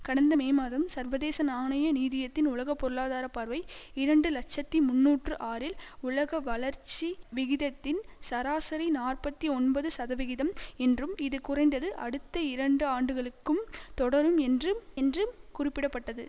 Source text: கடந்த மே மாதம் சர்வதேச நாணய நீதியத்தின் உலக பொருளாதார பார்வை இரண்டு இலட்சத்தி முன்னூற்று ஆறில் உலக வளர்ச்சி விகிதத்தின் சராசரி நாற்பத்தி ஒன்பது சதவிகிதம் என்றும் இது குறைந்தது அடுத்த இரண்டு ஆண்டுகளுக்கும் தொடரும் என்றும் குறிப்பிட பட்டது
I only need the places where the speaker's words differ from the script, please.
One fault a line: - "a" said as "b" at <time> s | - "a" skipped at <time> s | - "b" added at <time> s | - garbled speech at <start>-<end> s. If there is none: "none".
- "என்றும்" added at 14.9 s